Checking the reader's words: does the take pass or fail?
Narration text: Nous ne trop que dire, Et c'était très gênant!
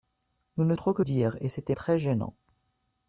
pass